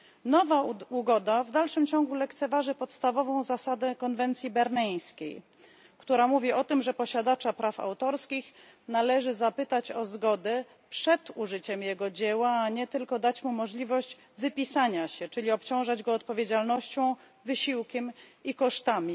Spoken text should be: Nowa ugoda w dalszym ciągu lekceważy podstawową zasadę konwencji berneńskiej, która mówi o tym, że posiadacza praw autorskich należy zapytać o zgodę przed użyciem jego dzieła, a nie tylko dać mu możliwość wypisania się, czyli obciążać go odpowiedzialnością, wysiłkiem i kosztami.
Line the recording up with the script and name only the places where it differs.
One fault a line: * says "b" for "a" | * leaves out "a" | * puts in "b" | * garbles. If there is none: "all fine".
all fine